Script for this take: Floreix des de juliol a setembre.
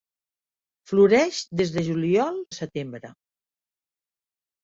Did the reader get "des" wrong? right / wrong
right